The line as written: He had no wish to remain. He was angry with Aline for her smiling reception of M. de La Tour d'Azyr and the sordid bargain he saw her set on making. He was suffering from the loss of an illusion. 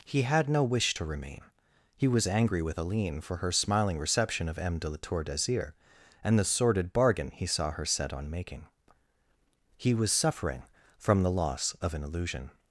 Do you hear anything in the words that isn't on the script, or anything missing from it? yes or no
no